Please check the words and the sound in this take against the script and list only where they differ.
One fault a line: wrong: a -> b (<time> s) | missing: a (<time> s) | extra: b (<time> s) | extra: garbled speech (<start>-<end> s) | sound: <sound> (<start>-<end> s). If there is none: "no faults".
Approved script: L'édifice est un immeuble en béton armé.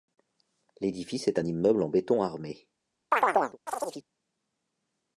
sound: chirp (3.1-4.0 s)